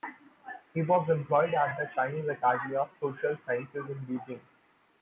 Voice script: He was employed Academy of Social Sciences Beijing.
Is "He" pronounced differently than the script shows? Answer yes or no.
no